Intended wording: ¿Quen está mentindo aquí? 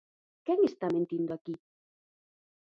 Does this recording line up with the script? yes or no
yes